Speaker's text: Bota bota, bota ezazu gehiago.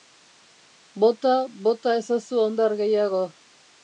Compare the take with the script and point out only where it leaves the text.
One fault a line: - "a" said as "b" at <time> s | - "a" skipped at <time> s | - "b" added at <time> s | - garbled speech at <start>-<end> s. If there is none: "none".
- "bota ezazu" said as "ezazu hondar" at 2.0 s